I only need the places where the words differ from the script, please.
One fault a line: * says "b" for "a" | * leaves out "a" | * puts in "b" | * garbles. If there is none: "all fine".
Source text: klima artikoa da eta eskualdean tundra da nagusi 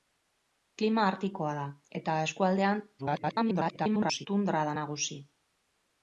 * garbles